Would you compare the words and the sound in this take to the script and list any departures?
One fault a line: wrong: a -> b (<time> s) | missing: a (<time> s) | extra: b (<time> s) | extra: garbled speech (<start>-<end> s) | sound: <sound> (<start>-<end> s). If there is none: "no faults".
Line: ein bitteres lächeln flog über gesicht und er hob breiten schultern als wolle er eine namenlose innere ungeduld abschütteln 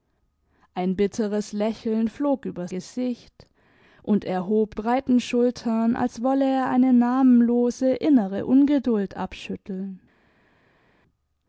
no faults